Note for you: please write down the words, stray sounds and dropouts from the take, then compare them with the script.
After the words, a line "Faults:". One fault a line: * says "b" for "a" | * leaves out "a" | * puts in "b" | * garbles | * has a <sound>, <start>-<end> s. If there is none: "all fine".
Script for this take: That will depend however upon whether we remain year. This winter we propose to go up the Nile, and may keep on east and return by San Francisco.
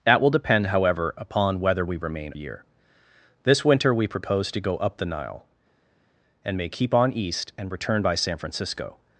That will depend however upon whether we remain year. This winter we propose to go up the Nile, and may keep on east and return by San Francisco.
Faults:
all fine